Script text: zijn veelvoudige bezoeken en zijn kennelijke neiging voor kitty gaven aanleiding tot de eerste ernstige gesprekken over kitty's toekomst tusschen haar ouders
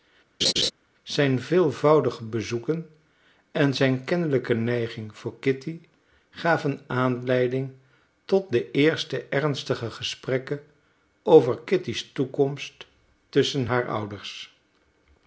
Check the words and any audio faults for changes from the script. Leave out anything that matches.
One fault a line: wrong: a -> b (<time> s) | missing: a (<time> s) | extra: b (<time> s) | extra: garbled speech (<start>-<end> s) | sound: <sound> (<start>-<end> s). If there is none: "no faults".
sound: laugh (0.4-0.7 s)